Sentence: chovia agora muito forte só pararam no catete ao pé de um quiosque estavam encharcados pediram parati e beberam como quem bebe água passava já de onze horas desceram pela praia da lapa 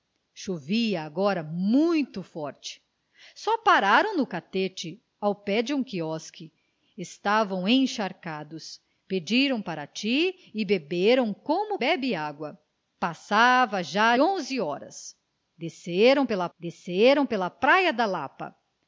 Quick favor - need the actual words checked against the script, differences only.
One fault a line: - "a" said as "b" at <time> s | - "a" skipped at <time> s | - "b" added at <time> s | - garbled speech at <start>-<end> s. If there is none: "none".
- "quem" skipped at 11.8 s
- "de" skipped at 14.2 s
- "desceram pela" added at 16.6 s